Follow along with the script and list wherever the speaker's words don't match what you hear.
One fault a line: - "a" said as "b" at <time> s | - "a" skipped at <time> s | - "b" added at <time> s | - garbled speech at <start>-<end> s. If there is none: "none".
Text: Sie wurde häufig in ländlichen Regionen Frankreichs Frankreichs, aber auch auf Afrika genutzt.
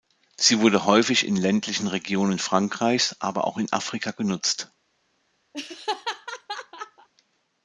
- "Frankreichs" skipped at 3.1 s
- "auf" said as "in" at 3.6 s